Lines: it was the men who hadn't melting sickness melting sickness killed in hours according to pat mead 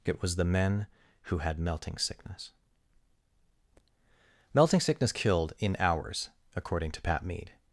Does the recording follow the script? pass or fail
fail